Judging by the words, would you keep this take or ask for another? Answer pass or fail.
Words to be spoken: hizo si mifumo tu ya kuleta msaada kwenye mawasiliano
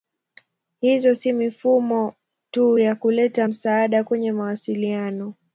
pass